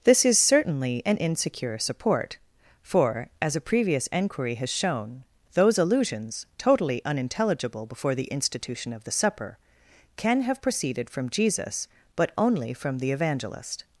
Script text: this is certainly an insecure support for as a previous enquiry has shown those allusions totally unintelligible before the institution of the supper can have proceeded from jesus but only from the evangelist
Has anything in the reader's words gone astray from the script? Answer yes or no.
no